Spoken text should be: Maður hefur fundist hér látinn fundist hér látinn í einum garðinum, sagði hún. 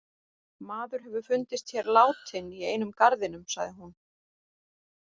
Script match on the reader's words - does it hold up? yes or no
no